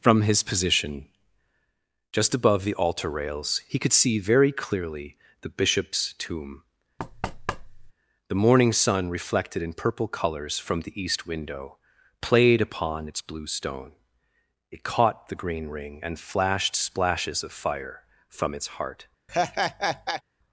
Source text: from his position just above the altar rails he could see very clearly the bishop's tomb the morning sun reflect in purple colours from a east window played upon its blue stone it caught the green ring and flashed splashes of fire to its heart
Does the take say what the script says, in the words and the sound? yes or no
no